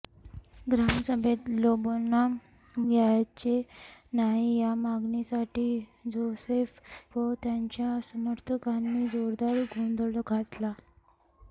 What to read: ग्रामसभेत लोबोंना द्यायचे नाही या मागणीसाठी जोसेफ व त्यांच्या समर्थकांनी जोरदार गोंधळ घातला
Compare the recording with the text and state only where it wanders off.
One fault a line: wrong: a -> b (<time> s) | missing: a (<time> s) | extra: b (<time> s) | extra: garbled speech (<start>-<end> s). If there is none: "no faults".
no faults